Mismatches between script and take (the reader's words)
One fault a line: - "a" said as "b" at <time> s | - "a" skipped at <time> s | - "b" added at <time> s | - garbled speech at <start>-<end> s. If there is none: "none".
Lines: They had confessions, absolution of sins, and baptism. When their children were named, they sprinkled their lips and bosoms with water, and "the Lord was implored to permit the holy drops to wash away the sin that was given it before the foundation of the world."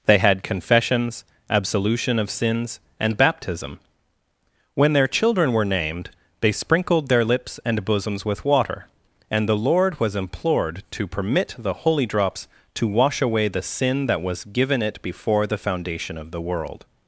none